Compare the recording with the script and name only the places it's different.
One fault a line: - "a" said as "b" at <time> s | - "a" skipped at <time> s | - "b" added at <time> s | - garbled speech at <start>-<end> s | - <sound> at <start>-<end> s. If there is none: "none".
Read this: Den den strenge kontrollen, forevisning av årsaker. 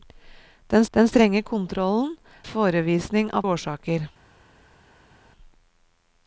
none